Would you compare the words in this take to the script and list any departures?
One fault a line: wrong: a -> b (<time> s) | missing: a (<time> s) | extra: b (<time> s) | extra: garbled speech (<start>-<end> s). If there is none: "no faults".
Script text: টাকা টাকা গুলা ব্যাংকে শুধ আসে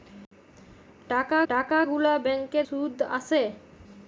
no faults